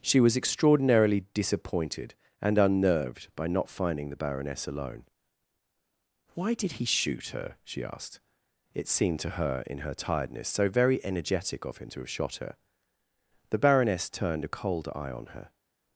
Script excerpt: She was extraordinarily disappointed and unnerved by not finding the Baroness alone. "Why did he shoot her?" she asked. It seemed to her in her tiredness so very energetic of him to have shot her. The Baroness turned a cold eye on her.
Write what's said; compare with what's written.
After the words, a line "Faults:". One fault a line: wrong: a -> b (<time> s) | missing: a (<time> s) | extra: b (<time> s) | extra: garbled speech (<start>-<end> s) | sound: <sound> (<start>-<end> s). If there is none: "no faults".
She was extraordinarily disappointed and unnerved by not finding the Baroness alone. "Why did he shoot her?" she asked. It seemed to her in her tiredness so very energetic of him to have shot her. The Baroness turned a cold eye on her.
Faults:
no faults